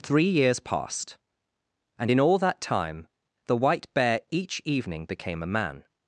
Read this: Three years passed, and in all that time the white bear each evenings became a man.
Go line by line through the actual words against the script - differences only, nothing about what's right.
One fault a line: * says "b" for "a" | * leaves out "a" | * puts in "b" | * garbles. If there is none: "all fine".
* says "evening" for "evenings"